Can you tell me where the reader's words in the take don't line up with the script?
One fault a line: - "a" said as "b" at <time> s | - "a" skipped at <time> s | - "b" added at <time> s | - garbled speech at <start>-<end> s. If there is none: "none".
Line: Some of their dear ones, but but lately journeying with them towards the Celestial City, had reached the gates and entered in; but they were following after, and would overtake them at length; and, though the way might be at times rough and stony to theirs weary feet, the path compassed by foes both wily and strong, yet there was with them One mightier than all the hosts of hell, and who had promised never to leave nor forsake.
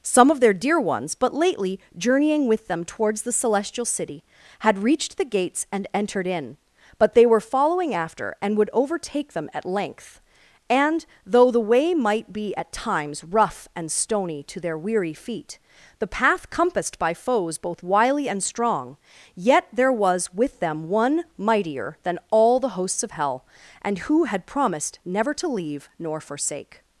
- "but" skipped at 1.3 s
- "theirs" said as "their" at 14.6 s